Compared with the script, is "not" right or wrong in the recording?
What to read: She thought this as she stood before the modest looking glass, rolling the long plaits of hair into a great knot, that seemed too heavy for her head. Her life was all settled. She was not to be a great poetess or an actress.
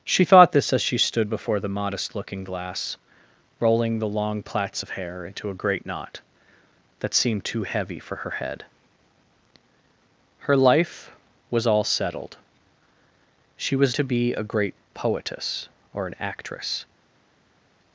wrong